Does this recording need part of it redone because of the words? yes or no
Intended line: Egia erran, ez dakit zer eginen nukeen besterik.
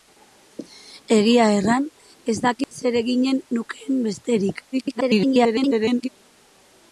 yes